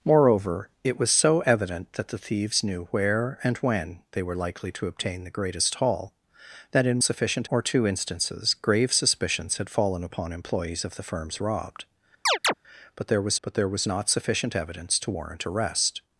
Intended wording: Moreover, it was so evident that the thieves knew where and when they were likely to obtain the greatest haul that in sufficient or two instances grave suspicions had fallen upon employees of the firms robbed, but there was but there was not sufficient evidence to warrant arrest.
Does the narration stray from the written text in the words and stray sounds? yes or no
yes